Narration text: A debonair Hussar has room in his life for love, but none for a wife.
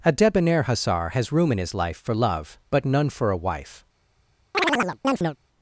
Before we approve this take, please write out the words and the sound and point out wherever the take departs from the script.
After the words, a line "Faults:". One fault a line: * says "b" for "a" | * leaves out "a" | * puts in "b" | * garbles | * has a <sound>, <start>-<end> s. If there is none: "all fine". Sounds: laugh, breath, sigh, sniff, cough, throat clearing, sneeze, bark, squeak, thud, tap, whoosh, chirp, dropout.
A debonair Hussar has room in his life for love, but none for a wife.
Faults:
* has a chirp, 4.5-5.4 s